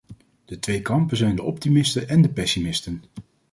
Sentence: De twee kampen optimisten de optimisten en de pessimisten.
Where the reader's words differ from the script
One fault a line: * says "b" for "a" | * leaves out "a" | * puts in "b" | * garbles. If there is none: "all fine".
* says "zijn" for "optimisten"